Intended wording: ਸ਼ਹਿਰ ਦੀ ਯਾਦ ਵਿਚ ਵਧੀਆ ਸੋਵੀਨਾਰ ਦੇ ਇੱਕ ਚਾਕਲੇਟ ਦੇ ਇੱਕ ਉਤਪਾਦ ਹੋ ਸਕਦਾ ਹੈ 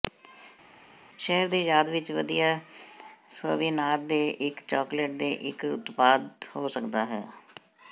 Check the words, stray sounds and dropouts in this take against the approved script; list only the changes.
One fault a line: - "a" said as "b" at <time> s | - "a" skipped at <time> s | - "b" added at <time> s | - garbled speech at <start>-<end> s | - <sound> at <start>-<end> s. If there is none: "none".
none